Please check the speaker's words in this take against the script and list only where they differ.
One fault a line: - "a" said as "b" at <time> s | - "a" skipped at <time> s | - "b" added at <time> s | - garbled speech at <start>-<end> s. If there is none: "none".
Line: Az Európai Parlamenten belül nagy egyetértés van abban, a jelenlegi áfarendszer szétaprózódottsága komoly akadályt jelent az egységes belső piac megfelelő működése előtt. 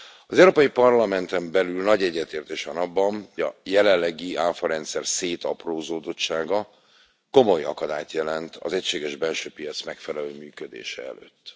none